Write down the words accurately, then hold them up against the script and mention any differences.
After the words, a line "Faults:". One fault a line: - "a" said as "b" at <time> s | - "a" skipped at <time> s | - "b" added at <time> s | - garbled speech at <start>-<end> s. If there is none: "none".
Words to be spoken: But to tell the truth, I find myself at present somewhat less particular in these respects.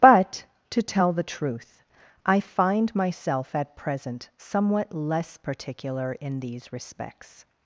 But to tell the truth, I find myself at present somewhat less particular in these respects.
Faults:
none